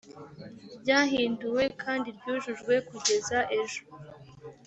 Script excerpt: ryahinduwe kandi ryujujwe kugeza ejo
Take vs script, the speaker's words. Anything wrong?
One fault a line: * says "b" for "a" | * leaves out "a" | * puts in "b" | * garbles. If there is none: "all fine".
all fine